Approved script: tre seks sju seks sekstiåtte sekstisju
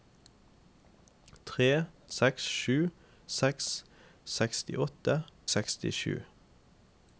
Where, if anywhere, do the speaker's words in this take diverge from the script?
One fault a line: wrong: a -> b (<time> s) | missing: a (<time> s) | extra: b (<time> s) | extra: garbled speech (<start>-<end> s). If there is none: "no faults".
no faults